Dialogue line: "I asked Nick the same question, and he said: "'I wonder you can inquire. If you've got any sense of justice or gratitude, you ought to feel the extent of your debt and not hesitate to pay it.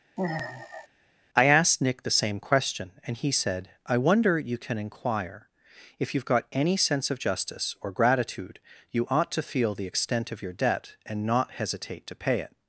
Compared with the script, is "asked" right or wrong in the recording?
right